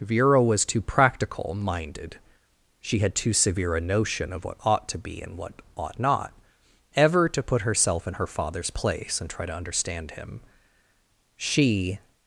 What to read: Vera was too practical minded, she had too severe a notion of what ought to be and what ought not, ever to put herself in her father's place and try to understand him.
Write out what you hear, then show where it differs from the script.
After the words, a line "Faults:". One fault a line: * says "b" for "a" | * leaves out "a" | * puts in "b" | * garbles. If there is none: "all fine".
Vera was too practical minded, she had too severe a notion of what ought to be and what ought not, ever to put herself in her father's place and try to understand him. She
Faults:
* puts in "She"